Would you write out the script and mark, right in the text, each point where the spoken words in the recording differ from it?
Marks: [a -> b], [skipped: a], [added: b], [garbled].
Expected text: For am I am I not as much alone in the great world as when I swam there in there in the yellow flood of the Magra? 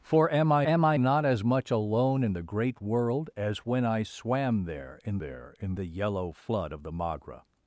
For am I am I not as much alone in the great world as when I swam there in there in the yellow flood of the Magra?